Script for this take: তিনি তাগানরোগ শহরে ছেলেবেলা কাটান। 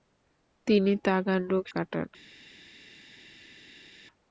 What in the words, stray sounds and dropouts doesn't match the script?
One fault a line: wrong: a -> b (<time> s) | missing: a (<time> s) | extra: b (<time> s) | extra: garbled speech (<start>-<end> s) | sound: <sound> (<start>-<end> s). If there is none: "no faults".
missing: শহরে ছেলেবেলা (1.6 s)